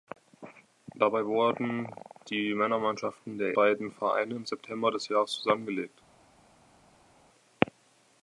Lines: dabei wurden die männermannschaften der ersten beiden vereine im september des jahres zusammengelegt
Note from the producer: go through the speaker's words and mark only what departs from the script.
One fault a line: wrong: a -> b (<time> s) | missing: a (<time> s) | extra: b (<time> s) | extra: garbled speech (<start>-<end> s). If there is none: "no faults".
missing: ersten (3.5 s)